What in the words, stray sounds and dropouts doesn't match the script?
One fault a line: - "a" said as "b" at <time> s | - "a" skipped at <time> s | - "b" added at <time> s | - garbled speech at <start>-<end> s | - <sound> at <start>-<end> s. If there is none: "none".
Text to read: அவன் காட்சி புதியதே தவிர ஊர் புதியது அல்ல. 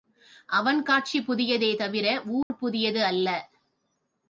- dropout at 2.4-2.5 s